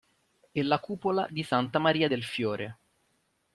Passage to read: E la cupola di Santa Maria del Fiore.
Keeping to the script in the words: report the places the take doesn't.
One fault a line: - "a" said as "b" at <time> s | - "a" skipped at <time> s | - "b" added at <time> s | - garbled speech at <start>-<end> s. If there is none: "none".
none